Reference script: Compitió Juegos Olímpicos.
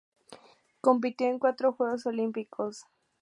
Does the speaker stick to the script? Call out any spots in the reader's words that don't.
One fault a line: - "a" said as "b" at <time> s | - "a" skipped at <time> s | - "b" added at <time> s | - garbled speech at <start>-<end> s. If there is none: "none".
- "en cuatro" added at 1.3 s